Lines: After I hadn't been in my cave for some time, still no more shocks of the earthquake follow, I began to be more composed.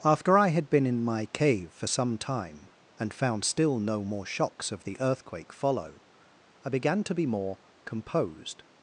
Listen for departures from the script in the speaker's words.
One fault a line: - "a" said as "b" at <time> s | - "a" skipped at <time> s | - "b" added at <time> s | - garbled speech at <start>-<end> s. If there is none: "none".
- "hadn't" said as "had" at 0.5 s
- "and found" added at 3.0 s